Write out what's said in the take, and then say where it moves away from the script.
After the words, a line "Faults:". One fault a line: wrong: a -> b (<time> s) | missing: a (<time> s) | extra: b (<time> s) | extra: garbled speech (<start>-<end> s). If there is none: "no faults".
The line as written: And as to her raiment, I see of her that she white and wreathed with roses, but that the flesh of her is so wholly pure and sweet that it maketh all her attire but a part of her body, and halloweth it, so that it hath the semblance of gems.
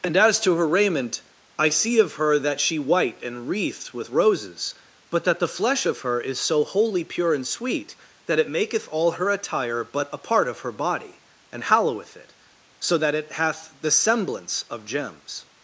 And as to her raiment, I see of her that she white and wreathed with roses, but that the flesh of her is so wholly pure and sweet that it maketh all her attire but a part of her body, and halloweth it, so that it hath the semblance of gems.
Faults:
no faults